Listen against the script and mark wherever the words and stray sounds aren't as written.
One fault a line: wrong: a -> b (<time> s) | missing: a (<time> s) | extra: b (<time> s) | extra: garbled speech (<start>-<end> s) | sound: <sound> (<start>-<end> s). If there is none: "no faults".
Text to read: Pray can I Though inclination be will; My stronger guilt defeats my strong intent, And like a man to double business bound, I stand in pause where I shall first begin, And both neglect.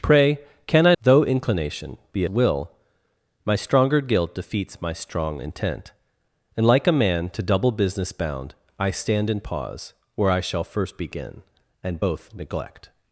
no faults